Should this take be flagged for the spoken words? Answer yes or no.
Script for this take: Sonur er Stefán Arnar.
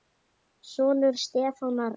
no